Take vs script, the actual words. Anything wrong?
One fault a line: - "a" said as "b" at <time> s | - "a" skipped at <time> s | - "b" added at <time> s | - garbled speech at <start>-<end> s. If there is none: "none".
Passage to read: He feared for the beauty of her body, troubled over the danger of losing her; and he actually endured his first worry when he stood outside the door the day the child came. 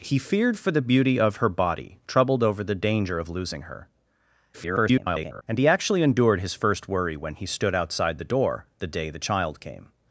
- garbled speech at 4.5-5.4 s